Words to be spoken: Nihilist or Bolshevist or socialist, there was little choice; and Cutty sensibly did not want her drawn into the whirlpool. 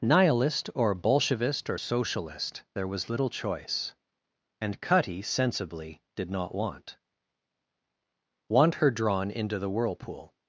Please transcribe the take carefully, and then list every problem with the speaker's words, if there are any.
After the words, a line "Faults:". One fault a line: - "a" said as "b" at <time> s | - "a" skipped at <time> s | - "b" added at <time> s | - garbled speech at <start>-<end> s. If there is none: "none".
Nihilist or Bolshevist or socialist, there was little choice; and Cutty sensibly did not want want her drawn into the whirlpool.
Faults:
- "want" added at 8.5 s